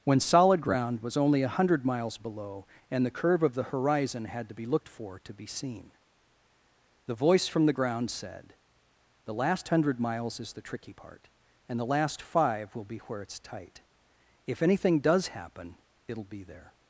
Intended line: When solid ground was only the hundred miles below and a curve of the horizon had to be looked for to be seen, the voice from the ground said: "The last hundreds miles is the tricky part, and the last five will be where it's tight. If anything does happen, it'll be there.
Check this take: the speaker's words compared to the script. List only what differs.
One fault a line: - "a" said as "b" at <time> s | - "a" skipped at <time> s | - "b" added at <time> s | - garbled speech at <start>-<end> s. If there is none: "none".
- "the" said as "a" at 1.4 s
- "a" said as "the" at 3.0 s
- "hundreds" said as "hundred" at 9.7 s